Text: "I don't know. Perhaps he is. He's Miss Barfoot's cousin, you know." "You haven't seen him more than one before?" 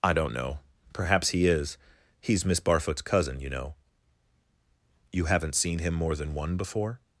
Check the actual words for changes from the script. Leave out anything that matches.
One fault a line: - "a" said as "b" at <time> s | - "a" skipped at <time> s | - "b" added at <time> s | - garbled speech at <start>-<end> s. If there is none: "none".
none